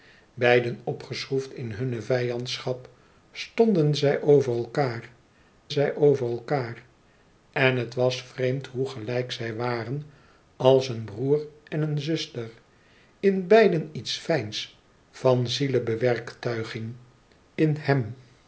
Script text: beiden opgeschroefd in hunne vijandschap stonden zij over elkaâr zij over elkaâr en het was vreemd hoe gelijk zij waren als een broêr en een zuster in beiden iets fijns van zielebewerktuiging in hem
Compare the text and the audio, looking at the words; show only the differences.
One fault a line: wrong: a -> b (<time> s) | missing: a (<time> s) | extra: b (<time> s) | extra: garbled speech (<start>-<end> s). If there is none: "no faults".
no faults